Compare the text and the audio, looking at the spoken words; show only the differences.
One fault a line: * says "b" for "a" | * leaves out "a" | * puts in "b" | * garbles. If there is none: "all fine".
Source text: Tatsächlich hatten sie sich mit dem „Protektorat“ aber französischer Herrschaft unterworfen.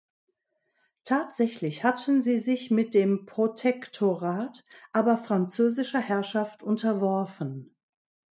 all fine